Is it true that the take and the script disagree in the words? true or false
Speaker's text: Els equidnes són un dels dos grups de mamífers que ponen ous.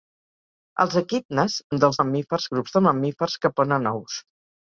true